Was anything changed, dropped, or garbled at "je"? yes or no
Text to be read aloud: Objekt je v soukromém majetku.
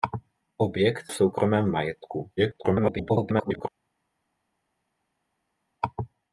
yes